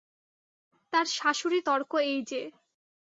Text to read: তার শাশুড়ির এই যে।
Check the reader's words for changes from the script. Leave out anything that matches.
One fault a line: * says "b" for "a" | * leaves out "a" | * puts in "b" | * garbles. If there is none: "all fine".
* puts in "তর্ক"